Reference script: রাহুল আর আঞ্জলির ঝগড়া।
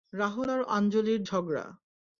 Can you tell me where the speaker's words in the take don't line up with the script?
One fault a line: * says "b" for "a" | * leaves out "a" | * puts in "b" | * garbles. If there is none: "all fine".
all fine